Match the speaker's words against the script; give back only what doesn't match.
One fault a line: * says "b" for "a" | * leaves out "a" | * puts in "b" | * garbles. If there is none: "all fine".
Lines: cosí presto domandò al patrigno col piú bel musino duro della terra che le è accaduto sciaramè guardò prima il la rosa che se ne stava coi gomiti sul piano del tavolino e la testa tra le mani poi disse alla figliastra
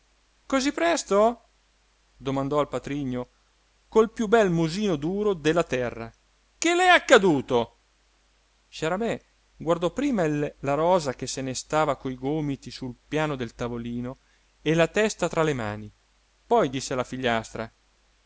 all fine